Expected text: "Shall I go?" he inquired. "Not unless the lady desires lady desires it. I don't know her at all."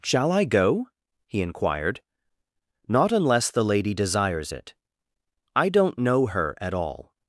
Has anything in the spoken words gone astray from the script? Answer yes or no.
yes